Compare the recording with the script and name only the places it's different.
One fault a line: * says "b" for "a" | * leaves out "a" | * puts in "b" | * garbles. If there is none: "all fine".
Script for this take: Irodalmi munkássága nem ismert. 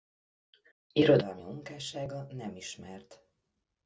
all fine